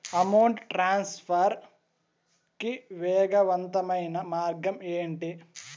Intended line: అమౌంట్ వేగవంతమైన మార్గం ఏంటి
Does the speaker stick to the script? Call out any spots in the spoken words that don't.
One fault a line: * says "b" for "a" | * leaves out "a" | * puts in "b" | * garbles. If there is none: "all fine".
* puts in "ట్రాన్స్ఫర్ కి"